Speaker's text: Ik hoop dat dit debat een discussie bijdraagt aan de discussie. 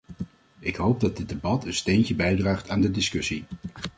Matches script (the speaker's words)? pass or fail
fail